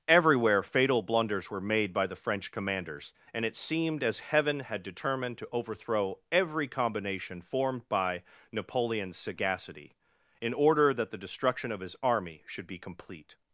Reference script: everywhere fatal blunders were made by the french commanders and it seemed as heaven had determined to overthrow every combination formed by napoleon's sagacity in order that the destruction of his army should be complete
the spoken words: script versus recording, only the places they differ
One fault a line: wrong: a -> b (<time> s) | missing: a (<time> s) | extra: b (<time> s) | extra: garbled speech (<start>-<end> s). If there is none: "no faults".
no faults